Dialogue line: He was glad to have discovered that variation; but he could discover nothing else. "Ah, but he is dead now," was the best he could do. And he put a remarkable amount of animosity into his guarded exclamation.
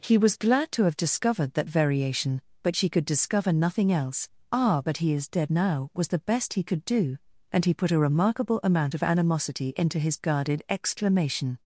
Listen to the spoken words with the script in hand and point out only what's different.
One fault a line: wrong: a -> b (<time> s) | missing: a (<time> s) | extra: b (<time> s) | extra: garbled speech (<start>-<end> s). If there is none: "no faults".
wrong: he -> she (2.8 s)